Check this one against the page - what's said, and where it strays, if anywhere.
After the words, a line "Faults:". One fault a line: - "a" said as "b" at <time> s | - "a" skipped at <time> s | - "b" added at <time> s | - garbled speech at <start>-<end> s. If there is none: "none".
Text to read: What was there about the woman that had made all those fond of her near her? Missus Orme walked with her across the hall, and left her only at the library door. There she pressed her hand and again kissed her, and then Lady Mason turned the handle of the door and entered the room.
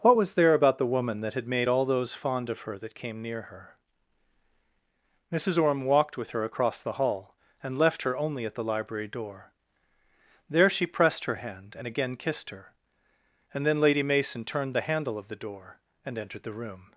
What was there about the woman that had made all those fond of her that came near her? Missus Orme walked with her across the hall, and left her only at the library door. There she pressed her hand and again kissed her, and then Lady Mason turned the handle of the door and entered the room.
Faults:
- "that came" added at 2.8 s